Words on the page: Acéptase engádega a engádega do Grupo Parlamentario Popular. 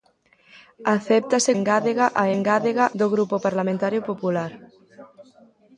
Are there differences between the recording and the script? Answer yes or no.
no